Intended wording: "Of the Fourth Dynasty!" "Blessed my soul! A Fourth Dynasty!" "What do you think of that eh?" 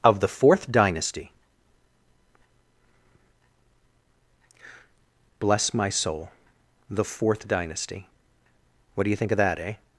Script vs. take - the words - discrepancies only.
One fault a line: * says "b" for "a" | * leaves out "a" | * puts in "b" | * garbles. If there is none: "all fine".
* says "Bless" for "Blessed"
* says "The" for "A"